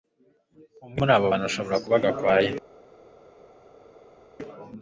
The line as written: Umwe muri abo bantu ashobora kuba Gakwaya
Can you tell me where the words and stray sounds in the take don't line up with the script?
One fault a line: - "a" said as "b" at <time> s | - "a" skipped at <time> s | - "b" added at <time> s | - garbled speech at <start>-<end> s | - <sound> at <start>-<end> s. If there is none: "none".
none